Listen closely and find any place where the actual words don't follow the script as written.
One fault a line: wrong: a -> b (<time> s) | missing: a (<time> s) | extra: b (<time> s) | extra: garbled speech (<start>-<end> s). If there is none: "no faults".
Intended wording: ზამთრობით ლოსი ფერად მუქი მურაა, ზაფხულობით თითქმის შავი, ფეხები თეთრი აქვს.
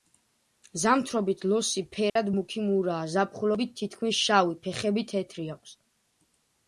no faults